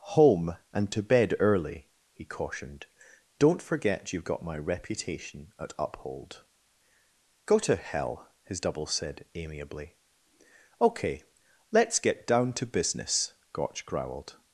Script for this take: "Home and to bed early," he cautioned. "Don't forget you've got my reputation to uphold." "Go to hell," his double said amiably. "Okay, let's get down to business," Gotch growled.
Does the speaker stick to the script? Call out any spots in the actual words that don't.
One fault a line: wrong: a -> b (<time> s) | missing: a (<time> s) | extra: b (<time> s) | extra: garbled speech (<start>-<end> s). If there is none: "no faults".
wrong: to -> at (5.6 s)